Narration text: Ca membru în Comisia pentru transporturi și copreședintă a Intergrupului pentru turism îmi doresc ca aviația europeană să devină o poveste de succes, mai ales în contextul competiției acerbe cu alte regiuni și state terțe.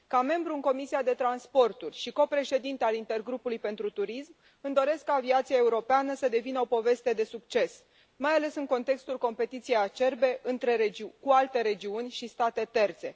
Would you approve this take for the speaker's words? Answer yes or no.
yes